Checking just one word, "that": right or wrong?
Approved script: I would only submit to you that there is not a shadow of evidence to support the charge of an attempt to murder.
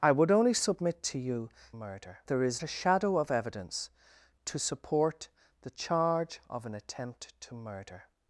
wrong